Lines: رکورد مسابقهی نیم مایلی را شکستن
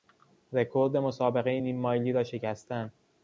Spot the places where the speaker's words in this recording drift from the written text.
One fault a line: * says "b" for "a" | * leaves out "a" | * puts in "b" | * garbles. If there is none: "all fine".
all fine